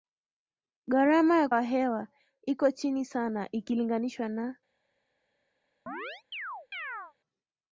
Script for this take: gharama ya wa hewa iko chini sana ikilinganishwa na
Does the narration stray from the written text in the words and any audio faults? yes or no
yes